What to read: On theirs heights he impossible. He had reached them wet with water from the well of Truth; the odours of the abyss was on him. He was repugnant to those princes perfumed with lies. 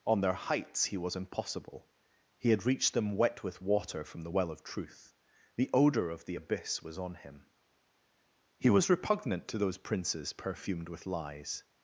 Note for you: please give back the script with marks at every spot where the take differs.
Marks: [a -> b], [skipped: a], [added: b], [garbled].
On [theirs -> their] heights he [added: was] impossible. He had reached them wet with water from the well of Truth; the [odours -> odour] of the abyss was on him. He was repugnant to those princes perfumed with lies.